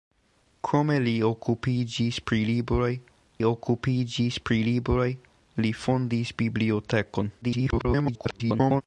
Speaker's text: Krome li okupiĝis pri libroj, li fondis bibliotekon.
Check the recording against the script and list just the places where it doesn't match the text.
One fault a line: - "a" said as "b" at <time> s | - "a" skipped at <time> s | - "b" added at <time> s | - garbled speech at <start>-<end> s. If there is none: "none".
- "okupiĝis pri libroj" added at 3.5 s
- garbled speech at 7.4-8.8 s